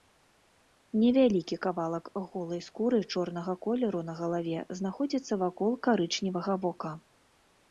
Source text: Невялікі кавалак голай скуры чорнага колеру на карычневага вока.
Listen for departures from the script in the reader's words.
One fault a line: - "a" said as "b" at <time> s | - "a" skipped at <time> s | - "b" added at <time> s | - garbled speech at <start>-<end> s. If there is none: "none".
- "галаве знаходзіцца вакол" added at 4.2 s